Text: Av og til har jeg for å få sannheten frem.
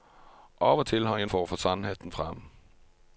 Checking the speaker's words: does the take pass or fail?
pass